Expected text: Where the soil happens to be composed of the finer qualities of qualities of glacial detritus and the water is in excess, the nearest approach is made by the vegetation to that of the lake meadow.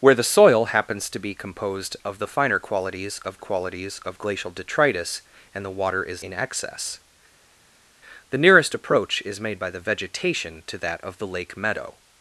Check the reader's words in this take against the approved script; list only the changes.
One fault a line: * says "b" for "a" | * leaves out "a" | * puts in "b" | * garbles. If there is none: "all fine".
all fine